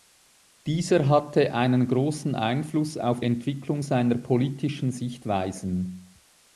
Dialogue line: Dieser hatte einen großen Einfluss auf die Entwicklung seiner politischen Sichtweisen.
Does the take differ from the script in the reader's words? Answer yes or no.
yes